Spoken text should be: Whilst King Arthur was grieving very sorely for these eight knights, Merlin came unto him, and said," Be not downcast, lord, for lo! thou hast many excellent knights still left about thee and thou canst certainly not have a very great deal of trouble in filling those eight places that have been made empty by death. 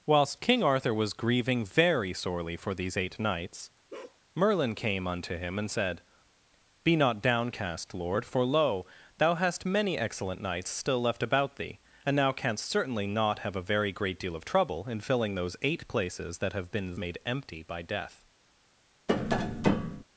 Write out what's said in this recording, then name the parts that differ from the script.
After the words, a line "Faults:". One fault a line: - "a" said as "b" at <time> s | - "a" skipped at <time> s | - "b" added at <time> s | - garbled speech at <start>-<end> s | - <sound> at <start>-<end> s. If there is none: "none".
Whilst King Arthur was grieving very sorely for these eight knights, Merlin came unto him, and said," Be not downcast, lord, for lo! thou hast many excellent knights still left about thee and thou canst certainly not have a very great deal of trouble in filling those eight places that have been made empty by death.
Faults:
- bark at 3.9-4.2 s
- tap at 19.1-20.0 s